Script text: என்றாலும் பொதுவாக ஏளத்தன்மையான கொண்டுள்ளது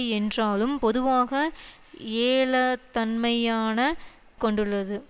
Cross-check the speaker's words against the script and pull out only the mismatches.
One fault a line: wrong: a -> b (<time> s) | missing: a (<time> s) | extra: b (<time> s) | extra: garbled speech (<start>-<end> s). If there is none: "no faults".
no faults